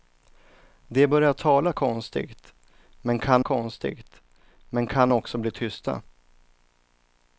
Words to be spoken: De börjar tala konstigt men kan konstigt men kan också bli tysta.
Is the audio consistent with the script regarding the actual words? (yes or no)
yes